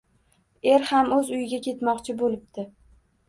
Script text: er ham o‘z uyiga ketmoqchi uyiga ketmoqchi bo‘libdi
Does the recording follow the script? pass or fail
fail